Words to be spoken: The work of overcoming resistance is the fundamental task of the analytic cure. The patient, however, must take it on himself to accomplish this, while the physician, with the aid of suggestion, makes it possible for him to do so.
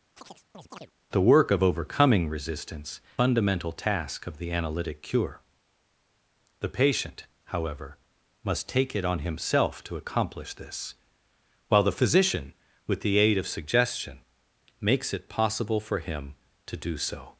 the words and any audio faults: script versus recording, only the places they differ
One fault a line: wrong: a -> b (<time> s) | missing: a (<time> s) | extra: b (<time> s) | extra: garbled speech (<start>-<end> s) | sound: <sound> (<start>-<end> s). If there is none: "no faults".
sound: chirp (0.2-0.9 s)
missing: is the (3.0 s)